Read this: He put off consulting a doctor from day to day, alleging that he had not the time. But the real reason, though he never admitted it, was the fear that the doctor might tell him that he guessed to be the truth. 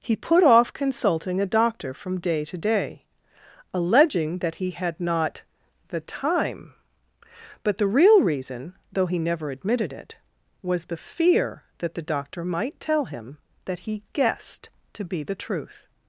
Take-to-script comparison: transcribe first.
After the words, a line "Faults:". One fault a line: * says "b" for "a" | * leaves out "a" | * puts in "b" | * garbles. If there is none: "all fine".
He put off consulting a doctor from day to day, alleging that he had not the time. But the real reason, though he never admitted it, was the fear that the doctor might tell him that he guessed to be the truth.
Faults:
all fine